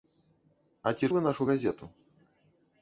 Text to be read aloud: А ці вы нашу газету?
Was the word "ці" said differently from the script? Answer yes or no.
no